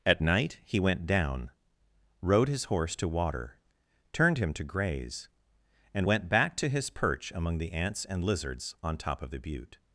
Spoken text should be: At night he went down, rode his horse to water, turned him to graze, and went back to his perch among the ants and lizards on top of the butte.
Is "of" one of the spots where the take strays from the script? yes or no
no